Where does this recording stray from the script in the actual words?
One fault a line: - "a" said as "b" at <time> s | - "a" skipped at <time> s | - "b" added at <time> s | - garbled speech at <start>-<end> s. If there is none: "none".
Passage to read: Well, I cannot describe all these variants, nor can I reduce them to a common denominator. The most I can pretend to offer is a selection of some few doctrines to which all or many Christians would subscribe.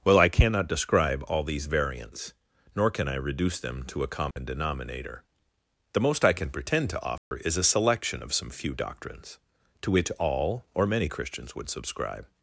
none